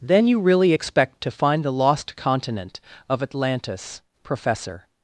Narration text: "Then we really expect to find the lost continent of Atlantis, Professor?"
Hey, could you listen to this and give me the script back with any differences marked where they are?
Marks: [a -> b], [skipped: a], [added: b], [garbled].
"Then [we -> you] really expect to find the lost continent of Atlantis, Professor?"